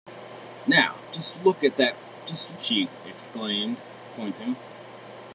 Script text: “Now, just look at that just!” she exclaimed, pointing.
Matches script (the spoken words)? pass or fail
pass